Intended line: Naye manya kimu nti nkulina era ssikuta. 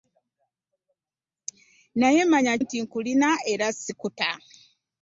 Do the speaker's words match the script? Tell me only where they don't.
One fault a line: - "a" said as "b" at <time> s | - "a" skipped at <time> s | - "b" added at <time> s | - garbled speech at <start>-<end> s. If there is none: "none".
- "kimu" skipped at 2.5 s